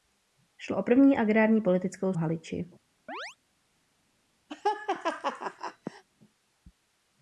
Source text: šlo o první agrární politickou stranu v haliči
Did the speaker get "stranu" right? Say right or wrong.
wrong